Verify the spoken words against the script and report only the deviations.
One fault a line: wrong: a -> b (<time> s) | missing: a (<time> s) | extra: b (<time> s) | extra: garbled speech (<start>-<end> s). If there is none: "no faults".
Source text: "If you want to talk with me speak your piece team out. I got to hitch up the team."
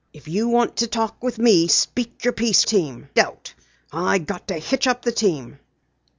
no faults